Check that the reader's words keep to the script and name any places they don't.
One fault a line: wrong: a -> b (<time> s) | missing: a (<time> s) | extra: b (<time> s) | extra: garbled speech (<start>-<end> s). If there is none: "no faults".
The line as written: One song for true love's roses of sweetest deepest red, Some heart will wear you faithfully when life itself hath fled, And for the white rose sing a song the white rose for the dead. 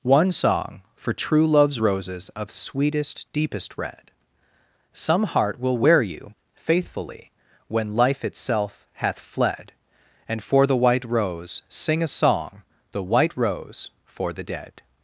no faults